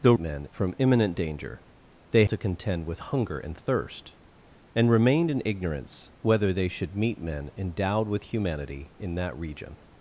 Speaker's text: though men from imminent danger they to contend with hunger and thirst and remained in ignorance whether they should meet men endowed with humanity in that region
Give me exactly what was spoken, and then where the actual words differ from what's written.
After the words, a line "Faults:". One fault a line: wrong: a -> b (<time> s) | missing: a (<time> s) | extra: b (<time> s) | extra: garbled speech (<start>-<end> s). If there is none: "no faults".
though men from imminent danger they to contend with hunger and thirst and remained in ignorance whether they should meet men endowed with humanity in that region
Faults:
no faults